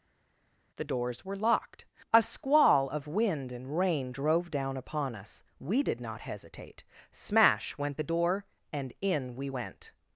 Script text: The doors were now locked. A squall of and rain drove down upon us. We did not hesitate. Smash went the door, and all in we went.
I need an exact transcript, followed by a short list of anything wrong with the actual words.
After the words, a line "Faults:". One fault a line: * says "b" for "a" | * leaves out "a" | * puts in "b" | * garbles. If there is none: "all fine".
The doors were locked. A squall of wind and rain drove down upon us. We did not hesitate. Smash went the door, and in we went.
Faults:
* leaves out "now"
* puts in "wind"
* leaves out "all"